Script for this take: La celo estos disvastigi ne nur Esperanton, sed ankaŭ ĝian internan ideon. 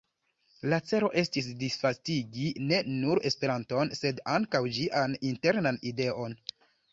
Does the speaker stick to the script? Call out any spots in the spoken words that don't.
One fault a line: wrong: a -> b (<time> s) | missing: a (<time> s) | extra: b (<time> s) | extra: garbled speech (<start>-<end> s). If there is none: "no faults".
wrong: estos -> estis (1.2 s)